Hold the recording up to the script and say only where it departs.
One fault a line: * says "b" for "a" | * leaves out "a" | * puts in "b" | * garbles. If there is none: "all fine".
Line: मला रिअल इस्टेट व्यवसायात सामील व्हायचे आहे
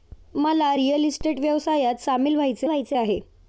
* puts in "व्हायचे"